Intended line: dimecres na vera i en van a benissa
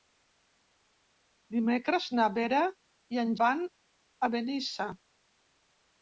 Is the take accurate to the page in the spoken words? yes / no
yes